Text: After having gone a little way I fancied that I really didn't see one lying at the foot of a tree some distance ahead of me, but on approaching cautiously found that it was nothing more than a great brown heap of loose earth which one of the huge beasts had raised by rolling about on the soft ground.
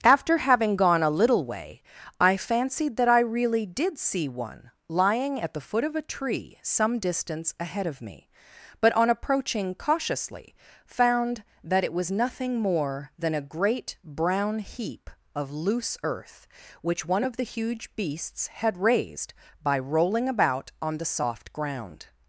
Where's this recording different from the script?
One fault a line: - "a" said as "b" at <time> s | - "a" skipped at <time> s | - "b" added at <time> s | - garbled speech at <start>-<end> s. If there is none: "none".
- "didn't" said as "did" at 3.7 s